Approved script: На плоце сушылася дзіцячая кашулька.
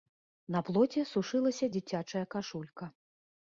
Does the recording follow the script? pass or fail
pass